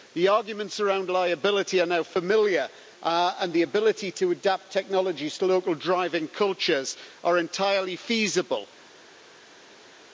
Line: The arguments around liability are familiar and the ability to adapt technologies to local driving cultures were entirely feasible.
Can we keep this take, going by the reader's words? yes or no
no